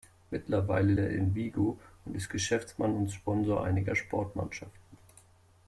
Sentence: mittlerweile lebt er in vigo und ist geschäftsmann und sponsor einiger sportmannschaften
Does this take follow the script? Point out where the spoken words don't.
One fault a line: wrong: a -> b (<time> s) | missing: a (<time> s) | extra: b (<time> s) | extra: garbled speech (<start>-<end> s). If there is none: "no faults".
missing: lebt (0.9 s)